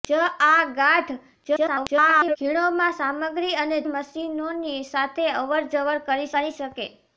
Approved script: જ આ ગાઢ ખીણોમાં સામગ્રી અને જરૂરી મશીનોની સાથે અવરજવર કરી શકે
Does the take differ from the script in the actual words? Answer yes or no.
yes